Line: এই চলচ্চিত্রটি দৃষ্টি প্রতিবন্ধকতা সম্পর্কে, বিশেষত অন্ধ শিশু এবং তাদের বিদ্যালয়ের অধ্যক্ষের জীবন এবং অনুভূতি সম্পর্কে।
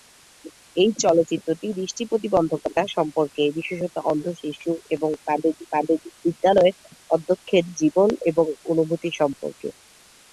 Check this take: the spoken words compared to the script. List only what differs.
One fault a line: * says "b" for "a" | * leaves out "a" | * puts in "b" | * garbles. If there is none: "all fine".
* puts in "তাদের"